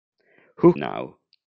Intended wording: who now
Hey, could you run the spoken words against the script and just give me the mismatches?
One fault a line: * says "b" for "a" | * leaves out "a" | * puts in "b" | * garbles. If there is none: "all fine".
all fine